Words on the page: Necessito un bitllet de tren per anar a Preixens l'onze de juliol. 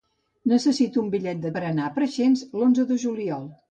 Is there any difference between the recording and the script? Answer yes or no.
yes